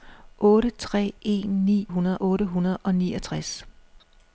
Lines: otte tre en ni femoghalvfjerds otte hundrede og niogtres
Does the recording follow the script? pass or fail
fail